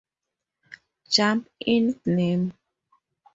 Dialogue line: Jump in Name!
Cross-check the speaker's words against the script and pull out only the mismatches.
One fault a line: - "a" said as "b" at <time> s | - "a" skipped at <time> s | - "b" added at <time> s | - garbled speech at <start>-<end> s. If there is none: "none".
none